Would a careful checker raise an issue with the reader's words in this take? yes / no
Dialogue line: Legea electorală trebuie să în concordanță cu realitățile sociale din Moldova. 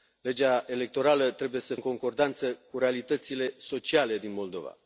no